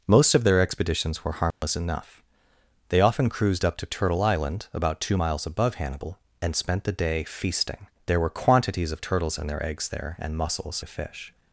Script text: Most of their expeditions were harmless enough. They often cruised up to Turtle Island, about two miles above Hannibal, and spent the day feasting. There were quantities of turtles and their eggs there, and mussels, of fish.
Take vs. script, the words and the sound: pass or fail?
fail